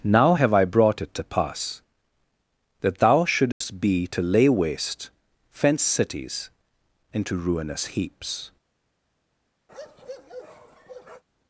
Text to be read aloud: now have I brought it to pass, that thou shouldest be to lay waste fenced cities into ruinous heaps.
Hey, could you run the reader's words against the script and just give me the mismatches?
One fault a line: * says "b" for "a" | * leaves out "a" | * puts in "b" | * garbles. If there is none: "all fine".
all fine